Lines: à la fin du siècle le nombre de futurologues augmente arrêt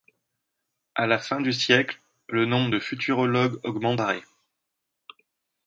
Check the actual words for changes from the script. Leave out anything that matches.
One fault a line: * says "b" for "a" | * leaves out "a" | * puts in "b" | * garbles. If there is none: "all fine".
all fine